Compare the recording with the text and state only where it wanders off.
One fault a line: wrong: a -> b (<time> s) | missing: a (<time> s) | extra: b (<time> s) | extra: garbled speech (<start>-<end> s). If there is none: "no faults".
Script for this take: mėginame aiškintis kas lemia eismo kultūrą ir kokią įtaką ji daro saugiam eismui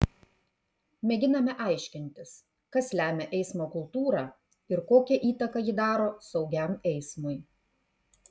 no faults